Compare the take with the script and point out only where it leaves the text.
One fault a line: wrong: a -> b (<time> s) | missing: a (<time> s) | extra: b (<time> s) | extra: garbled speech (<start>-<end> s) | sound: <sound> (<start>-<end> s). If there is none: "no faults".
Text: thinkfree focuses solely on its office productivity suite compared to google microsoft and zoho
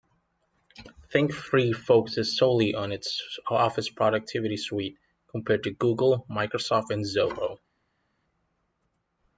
no faults